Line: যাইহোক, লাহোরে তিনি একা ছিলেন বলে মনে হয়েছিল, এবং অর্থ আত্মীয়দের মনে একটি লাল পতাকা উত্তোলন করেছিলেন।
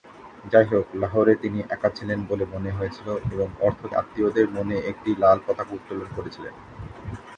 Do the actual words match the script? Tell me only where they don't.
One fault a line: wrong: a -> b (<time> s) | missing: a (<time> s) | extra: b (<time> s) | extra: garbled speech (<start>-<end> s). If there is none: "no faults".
no faults